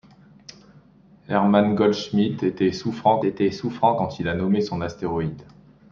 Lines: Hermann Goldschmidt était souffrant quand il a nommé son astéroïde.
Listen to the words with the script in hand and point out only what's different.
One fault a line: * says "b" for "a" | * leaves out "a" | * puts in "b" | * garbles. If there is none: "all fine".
* puts in "était souffrant"